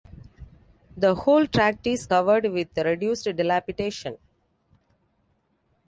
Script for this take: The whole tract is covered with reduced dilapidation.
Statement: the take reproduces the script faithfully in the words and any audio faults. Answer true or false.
true